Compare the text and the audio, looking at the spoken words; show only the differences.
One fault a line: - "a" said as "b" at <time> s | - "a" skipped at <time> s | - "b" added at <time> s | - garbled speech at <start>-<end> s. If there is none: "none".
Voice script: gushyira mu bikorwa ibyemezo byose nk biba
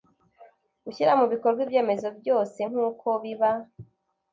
- "uko" added at 2.9 s